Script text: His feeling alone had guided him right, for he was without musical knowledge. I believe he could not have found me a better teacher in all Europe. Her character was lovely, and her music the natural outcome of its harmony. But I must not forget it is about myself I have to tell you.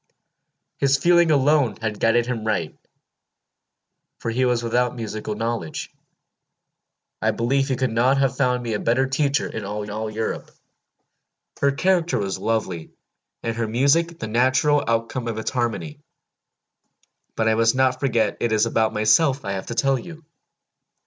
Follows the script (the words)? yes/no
no